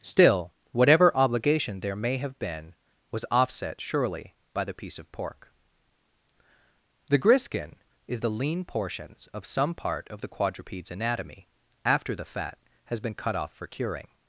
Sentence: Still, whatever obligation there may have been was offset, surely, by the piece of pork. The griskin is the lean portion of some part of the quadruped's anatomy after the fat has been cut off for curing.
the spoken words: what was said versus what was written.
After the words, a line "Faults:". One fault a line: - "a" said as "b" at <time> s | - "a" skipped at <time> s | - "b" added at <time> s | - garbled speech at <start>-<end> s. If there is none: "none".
Still, whatever obligation there may have been was offset, surely, by the piece of pork. The griskin is the lean portions of some part of the quadruped's anatomy after the fat has been cut off for curing.
Faults:
- "portion" said as "portions" at 8.6 s